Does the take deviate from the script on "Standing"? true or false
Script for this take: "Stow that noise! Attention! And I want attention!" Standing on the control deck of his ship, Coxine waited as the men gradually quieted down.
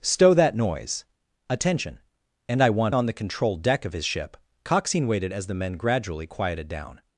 true